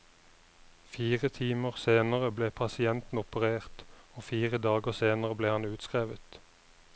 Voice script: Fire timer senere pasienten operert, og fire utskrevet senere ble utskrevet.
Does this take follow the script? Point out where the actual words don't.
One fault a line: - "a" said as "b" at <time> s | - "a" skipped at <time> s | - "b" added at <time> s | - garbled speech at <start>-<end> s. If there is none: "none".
- "ble" added at 2.4 s
- "utskrevet" said as "dager" at 4.7 s
- "han" added at 5.6 s